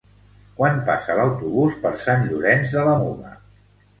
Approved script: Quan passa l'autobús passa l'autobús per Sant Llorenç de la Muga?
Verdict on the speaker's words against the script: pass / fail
fail